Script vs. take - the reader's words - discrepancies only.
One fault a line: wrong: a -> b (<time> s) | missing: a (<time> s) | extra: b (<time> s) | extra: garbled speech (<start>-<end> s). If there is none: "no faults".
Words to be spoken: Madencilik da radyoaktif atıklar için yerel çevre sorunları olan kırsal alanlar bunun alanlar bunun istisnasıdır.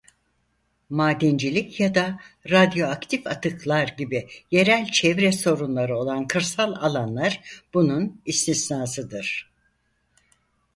extra: ya (1.8 s)
wrong: için -> gibi (3.9 s)
missing: alanlar bunun (8.2 s)